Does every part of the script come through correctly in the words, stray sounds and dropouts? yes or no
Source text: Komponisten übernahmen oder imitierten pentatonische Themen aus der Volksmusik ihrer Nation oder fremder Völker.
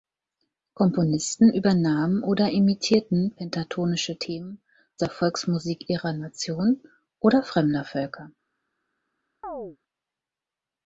no